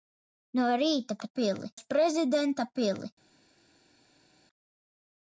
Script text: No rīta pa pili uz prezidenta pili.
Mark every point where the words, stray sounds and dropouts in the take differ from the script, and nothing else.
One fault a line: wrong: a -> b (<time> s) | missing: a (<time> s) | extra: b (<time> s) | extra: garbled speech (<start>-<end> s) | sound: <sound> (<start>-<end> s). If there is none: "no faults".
no faults